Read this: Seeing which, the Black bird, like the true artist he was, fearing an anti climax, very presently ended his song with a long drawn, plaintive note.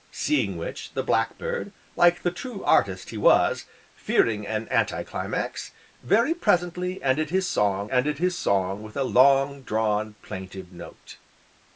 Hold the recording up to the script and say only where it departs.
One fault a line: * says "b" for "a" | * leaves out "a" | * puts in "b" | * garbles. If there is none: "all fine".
* puts in "ended his song"